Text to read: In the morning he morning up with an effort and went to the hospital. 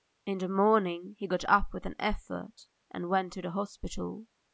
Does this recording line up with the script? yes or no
no